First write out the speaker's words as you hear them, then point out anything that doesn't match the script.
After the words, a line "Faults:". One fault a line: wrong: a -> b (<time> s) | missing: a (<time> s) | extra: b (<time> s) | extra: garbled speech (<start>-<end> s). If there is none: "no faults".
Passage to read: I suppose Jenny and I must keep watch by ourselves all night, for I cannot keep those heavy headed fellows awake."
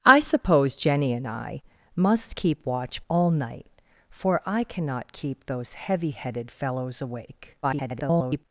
I suppose Jenny and I must keep watch all night, for I cannot keep those heavy headed fellows awake." [garbled]
Faults:
missing: by ourselves (3.0 s)
extra: garbled speech (7.6-8.5 s)